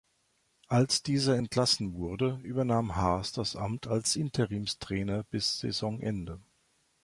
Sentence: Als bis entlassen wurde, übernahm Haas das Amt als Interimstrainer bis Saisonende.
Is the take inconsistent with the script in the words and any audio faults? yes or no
yes